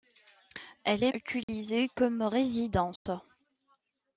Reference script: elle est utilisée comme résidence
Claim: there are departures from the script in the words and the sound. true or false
true